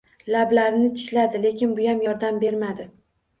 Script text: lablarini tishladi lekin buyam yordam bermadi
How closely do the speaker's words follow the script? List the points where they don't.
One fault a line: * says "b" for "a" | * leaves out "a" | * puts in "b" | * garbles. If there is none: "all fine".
all fine